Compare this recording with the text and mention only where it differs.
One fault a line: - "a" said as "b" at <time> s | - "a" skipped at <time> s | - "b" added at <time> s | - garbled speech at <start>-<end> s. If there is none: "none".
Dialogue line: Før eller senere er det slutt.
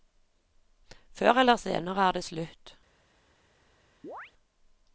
none